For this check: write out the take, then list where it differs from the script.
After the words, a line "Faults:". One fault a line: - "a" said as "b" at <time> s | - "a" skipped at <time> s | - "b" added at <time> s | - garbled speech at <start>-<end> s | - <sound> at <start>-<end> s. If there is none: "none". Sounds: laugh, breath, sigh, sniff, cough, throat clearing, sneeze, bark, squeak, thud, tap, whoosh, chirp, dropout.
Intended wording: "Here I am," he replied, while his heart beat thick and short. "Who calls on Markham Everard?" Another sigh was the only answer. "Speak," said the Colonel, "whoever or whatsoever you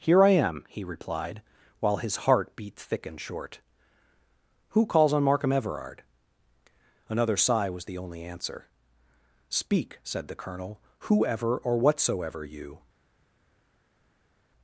"Here I am," he replied, while his heart beat thick and short. "Who calls on Markham Everard?" Another sigh was the only answer. "Speak," said the Colonel, "whoever or whatsoever you
Faults:
none